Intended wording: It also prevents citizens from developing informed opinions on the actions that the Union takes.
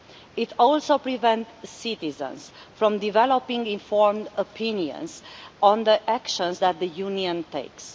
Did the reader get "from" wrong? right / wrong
right